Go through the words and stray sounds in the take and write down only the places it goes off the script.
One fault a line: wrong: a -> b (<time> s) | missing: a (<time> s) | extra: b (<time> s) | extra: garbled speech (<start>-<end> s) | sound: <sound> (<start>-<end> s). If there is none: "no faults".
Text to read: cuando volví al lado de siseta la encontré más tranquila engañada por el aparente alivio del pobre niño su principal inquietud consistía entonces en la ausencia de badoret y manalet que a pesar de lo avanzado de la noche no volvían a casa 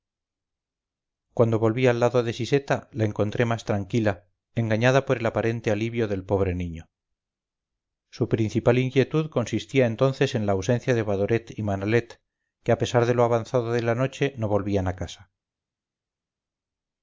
no faults